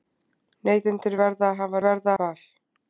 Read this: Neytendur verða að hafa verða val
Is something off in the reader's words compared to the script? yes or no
no